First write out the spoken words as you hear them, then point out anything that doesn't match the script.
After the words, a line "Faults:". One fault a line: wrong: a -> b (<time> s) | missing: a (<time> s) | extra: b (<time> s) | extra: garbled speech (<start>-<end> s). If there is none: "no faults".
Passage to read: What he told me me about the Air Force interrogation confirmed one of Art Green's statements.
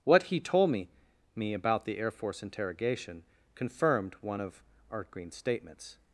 What he told me me about the Air Force interrogation confirmed one of Art Green's statements.
Faults:
no faults